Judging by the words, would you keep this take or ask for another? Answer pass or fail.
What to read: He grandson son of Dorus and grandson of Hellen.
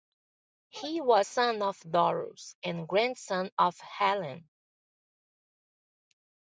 fail